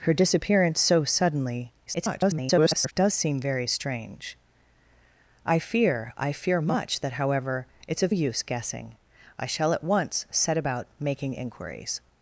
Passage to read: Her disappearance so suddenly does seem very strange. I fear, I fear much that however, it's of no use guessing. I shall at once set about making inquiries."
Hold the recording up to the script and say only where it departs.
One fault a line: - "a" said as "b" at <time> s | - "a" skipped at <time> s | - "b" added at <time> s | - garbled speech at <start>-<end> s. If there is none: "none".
- garbled speech at 1.9-2.9 s
- "no" skipped at 8.1 s